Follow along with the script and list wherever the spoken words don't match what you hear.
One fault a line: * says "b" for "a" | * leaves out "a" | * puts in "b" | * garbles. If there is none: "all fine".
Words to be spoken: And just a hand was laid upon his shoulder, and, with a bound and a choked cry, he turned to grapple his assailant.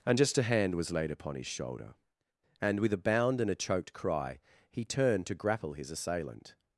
all fine